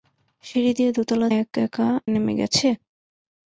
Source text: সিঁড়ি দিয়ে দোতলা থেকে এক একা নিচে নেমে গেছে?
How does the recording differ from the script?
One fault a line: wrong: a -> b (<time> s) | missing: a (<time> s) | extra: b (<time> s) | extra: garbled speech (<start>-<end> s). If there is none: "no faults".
missing: থেকে (1.3 s)
missing: নিচে (1.9 s)